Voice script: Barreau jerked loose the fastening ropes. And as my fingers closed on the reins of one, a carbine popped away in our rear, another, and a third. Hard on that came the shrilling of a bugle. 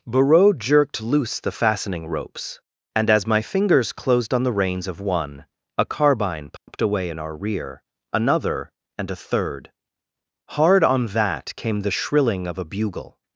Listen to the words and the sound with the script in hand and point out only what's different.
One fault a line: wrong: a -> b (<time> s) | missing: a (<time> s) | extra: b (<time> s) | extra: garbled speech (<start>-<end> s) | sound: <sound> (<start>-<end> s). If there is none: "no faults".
sound: dropout (6.6-6.7 s)